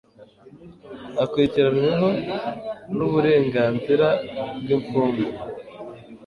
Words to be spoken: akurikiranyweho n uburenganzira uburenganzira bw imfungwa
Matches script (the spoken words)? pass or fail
fail